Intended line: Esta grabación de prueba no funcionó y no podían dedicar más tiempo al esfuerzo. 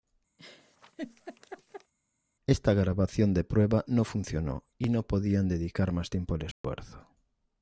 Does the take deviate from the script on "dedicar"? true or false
false